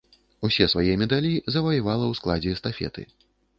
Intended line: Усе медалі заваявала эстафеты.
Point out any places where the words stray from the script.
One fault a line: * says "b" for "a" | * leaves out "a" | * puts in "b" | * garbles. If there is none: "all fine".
* puts in "свае"
* puts in "ў складзе"